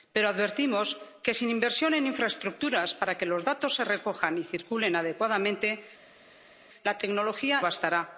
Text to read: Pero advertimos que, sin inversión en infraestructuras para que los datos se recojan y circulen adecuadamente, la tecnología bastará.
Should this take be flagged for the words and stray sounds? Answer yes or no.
no